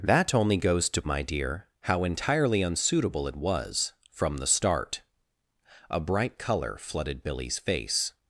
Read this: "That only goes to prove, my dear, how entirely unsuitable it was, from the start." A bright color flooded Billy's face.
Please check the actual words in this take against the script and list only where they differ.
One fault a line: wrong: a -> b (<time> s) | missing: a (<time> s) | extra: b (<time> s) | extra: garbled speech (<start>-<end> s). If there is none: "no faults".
missing: prove (1.0 s)